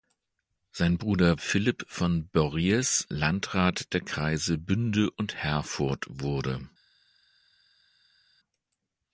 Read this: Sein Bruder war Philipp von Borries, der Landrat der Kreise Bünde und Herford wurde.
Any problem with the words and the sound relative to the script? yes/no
yes